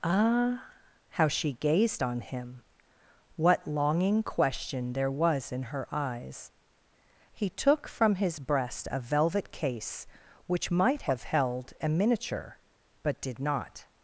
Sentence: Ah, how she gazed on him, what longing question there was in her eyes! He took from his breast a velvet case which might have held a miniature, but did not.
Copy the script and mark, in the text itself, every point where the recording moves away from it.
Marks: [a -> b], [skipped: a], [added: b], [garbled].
Ah, how she gazed on him, what longing question there was in her eyes! He took from his breast a velvet case which might have held a miniature, but did not.